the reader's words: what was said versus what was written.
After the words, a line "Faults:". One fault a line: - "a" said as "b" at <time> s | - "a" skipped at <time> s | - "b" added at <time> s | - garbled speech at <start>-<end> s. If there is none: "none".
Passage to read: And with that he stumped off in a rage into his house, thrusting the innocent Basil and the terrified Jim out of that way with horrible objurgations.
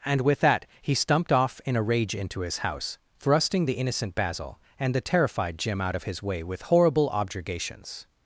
And with that he stumped off in a rage into his house, thrusting the innocent Basil and the terrified Jim out of his way with horrible objurgations.
Faults:
- "that" said as "his" at 6.0 s